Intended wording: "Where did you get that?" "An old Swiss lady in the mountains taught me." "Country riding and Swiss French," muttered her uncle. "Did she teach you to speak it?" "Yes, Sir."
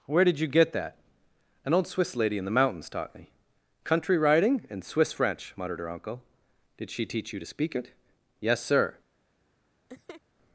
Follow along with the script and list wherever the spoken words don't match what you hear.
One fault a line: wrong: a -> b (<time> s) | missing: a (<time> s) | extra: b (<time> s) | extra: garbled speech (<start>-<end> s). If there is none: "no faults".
no faults